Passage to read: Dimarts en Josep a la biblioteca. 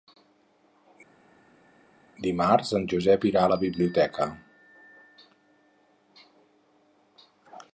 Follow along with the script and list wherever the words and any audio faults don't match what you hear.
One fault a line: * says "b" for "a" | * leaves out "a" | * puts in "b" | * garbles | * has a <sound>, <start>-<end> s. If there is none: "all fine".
* puts in "irà"